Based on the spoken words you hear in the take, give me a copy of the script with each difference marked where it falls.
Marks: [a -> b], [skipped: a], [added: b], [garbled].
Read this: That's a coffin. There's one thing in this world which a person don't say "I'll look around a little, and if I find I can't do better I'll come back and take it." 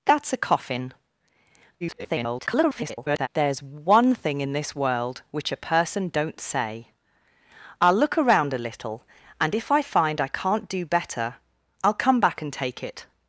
That's a coffin. [garbled] There's one thing in this world which a person don't say "I'll look around a little, and if I find I can't do better I'll come back and take it."